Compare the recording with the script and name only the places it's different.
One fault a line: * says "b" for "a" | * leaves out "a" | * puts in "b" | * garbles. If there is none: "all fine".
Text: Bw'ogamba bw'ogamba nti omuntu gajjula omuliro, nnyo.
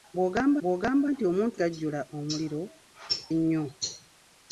all fine